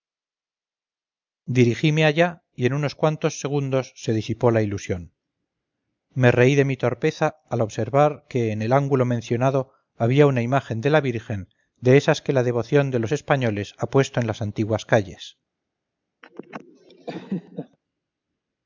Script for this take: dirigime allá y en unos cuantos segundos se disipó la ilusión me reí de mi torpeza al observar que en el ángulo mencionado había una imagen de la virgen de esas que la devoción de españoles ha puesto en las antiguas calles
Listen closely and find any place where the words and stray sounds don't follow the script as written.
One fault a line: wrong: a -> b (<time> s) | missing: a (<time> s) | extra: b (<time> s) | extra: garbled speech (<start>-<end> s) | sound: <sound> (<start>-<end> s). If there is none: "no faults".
extra: los (13.0 s)
sound: laugh (16.2-17.8 s)